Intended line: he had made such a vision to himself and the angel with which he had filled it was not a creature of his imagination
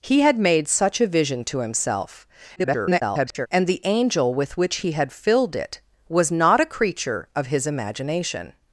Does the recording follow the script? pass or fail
fail